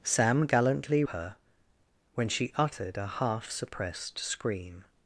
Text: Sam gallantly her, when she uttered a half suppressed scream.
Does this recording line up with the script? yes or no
yes